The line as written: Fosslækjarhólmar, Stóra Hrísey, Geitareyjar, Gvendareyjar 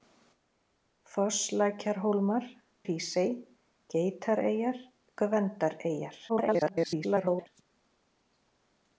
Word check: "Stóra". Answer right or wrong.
wrong